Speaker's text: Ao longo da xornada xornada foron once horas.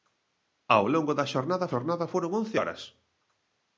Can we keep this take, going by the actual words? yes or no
yes